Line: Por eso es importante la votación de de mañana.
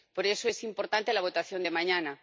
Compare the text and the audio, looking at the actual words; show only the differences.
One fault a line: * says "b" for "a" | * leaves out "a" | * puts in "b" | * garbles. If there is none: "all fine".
* leaves out "de"